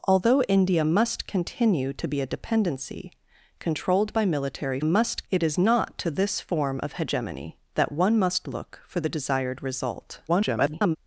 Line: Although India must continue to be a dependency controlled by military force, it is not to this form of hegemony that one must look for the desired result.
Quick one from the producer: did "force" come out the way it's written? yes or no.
no